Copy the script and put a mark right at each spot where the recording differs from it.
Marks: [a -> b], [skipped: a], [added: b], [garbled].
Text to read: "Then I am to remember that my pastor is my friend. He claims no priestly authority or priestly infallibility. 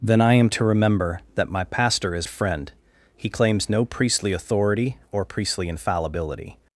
"Then I am to remember that my pastor is [skipped: my] friend. He claims no priestly authority or priestly infallibility.